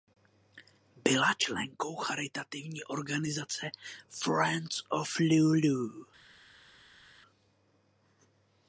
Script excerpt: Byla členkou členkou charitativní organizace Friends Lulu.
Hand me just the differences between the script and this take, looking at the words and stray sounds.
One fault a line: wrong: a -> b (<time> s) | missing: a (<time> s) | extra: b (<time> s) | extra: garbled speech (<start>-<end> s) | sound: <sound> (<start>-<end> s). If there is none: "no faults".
missing: členkou (1.9 s)
extra: of (4.9 s)